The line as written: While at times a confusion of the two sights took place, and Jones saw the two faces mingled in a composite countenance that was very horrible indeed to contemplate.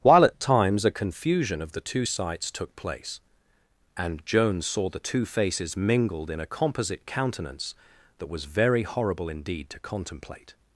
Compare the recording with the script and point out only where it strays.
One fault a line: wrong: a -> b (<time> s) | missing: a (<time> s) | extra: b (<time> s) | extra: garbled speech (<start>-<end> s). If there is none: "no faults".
no faults